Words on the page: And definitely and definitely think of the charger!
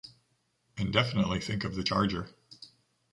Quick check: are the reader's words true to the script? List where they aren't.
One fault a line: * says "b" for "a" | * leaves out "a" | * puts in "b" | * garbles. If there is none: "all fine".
* leaves out "and definitely"